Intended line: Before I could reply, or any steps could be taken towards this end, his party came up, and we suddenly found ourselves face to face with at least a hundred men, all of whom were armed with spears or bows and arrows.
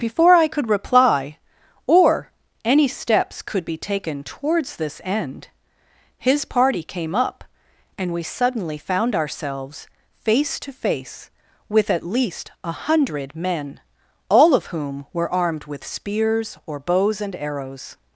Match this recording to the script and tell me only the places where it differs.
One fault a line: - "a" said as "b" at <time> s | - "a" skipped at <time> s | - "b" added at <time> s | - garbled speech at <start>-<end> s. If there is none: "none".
none